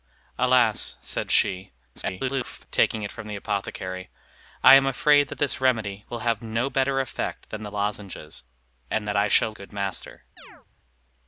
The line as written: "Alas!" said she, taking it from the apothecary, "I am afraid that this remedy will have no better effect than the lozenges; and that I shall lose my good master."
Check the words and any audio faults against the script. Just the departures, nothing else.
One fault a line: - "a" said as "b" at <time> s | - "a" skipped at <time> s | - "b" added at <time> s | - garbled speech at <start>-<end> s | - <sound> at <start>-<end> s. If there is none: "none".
- garbled speech at 1.9-2.7 s
- "lose my" skipped at 9.5 s
- chirp at 10.4-10.7 s